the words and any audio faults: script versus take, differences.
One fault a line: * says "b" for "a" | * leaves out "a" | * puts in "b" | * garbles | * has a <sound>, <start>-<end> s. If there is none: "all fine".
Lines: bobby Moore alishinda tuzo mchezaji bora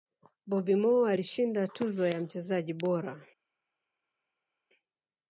* puts in "ya"